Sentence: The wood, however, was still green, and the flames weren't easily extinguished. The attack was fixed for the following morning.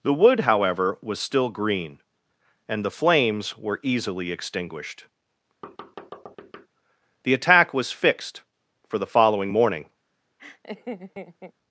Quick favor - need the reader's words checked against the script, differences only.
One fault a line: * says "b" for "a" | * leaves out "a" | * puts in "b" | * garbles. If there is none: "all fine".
* says "were" for "weren't"